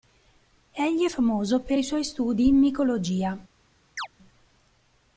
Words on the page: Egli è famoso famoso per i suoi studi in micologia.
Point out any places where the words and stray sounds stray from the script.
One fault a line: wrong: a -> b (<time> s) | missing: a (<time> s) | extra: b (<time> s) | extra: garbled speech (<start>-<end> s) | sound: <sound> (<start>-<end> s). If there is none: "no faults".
missing: famoso (1.6 s)
sound: chirp (4.0-4.1 s)